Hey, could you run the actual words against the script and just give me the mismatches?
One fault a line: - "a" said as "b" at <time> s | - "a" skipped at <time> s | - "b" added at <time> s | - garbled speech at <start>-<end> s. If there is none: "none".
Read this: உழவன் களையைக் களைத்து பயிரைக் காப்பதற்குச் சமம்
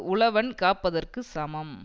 - "களையைக் களைத்து பயிரைக்" skipped at 0.5 s